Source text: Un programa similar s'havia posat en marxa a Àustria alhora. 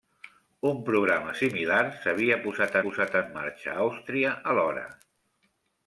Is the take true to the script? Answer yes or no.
no